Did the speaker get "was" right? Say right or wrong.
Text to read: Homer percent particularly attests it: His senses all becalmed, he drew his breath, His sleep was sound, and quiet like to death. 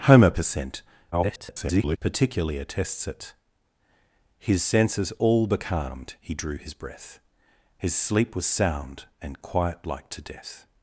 right